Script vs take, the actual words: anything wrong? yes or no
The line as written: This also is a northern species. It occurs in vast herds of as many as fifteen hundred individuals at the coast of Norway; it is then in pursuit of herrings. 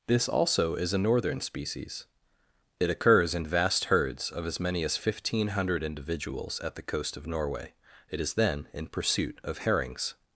no